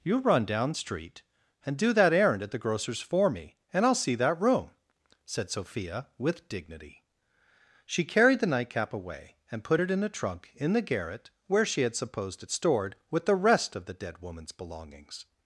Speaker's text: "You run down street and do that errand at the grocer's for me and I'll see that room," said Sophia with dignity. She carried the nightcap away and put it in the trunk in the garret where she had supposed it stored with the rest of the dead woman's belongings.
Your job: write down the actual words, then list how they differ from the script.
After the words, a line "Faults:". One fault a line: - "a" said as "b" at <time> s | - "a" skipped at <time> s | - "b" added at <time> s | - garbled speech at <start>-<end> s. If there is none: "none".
"You run down street and do that errand at the grocer's for me and I'll see that room," said Sophia with dignity. She carried the nightcap away and put it in a trunk in the garret where she had supposed it stored with the rest of the dead woman's belongings.
Faults:
- "the" said as "a" at 10.0 s